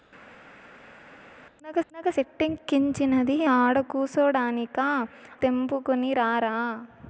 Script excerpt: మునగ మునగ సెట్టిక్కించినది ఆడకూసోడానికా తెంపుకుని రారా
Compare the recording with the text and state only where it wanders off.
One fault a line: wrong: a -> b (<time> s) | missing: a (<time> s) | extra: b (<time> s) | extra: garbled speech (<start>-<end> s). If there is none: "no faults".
no faults